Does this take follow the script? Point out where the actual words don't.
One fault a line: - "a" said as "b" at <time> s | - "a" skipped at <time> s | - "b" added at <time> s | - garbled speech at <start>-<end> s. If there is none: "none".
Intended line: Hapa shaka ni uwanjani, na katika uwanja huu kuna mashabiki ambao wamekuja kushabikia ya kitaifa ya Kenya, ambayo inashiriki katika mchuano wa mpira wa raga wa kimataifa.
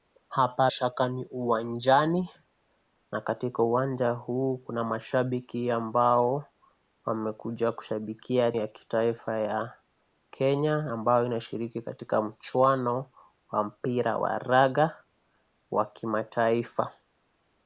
none